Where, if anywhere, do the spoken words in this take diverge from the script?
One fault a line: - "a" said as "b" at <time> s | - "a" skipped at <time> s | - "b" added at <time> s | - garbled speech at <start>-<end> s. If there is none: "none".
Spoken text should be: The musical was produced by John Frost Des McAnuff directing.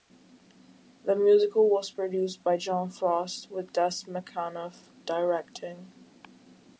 - "with" added at 3.5 s